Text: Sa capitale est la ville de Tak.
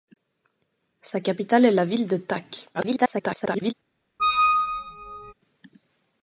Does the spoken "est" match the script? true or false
true